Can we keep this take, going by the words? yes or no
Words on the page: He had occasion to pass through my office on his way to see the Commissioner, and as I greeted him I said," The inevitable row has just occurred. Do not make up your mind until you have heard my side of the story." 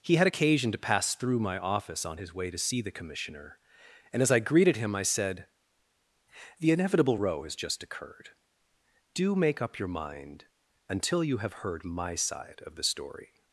no